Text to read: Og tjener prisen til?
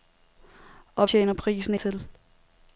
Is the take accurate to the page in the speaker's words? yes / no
yes